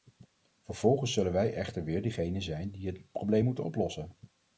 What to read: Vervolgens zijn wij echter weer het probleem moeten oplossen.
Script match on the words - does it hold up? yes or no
no